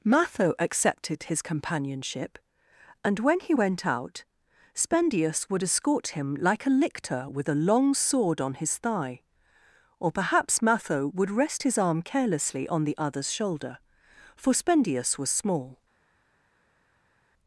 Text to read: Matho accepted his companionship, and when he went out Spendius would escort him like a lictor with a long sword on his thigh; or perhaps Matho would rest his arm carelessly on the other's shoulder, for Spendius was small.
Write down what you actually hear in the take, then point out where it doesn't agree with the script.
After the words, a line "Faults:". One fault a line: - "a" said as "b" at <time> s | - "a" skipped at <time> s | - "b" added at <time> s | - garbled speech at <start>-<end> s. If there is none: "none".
Matho accepted his companionship, and when he went out Spendius would escort him like a lictor with a long sword on his thigh; or perhaps Matho would rest his arm carelessly on the other's shoulder, for Spendius was small.
Faults:
none